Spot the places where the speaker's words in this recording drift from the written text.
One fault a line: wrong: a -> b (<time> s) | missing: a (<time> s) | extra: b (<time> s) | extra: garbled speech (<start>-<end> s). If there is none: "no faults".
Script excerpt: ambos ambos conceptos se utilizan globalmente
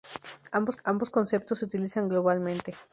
no faults